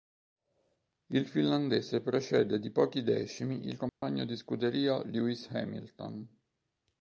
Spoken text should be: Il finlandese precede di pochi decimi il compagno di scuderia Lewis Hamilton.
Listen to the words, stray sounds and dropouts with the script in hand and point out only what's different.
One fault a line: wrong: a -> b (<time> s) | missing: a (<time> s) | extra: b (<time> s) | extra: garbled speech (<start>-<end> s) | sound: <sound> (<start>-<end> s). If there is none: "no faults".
sound: dropout (3.9-4.0 s)